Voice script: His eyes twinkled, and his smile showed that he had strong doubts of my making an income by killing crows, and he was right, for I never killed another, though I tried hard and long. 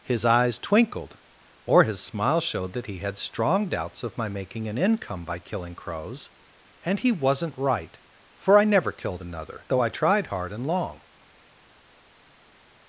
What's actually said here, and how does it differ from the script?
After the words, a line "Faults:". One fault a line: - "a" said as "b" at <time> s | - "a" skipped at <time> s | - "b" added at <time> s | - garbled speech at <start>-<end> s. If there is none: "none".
His eyes twinkled, or his smile showed that he had strong doubts of my making an income by killing crows, and he wasn't right, for I never killed another, though I tried hard and long.
Faults:
- "and" said as "or" at 1.6 s
- "was" said as "wasn't" at 7.1 s